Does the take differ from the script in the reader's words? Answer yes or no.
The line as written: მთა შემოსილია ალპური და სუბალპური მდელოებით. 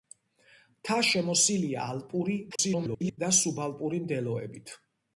yes